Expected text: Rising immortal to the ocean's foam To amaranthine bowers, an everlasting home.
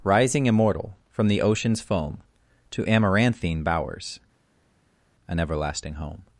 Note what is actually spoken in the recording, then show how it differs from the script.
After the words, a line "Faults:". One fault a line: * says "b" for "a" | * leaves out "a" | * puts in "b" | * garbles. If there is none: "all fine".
Rising immortal from the ocean's foam To amaranthine bowers, an everlasting home.
Faults:
* says "from" for "to"